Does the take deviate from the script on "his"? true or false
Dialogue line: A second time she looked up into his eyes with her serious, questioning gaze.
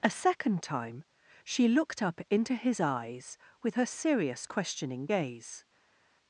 false